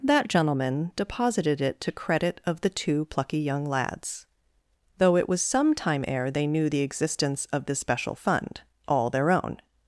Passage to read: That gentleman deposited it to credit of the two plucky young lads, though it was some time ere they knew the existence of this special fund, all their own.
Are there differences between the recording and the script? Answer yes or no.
no